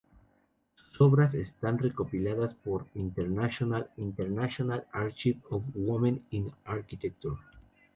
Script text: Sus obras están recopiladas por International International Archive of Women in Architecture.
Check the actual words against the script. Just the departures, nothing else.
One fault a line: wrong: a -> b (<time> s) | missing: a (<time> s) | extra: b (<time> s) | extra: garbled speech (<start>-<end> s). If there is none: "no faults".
no faults